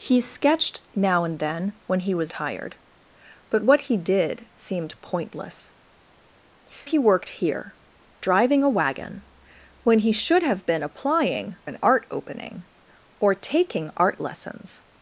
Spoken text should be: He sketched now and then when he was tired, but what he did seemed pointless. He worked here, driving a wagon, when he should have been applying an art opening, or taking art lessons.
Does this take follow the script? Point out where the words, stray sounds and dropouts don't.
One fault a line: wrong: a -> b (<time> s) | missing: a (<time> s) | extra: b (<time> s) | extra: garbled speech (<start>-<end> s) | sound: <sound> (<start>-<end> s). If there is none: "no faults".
no faults